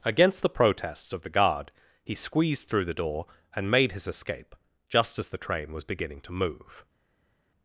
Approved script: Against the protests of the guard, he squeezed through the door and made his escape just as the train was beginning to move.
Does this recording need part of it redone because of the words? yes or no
no